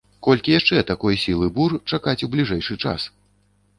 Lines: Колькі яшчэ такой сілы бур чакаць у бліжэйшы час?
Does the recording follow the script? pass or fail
pass